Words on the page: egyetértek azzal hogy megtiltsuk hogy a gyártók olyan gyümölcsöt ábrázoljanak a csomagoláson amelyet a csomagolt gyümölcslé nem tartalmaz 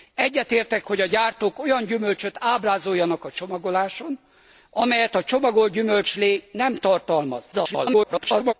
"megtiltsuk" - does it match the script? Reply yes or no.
no